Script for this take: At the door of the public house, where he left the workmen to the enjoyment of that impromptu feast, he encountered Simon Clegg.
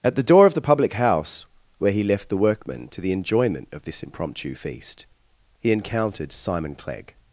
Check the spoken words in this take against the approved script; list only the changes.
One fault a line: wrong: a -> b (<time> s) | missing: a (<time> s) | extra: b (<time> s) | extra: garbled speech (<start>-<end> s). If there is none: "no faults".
wrong: that -> this (3.8 s)